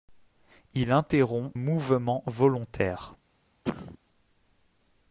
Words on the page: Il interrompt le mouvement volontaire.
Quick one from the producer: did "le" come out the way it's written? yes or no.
no